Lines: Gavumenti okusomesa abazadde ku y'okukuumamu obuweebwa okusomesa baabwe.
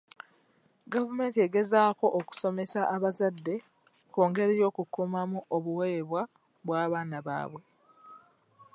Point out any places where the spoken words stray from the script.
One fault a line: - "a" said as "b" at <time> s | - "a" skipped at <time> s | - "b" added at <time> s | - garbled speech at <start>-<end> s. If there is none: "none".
- "egezaako" added at 1.5 s
- "ngeri" added at 4.3 s
- "okusomesa" said as "bw'abaana" at 6.6 s